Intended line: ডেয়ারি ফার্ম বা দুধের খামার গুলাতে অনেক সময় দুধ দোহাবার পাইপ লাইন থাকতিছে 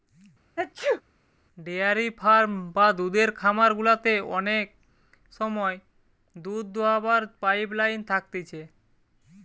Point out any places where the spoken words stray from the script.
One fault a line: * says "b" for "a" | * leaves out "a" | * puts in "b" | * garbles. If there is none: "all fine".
all fine